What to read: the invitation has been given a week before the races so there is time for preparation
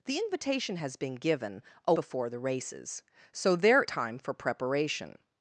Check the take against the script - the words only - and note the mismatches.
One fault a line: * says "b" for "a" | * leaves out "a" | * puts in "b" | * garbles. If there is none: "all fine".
* leaves out "week"
* leaves out "is"